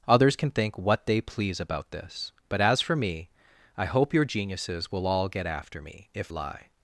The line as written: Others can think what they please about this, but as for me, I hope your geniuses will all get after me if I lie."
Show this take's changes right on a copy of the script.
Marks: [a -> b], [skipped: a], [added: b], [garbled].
Others can think what they please about this, but as for me, I hope your geniuses will all get after me if [skipped: I] lie."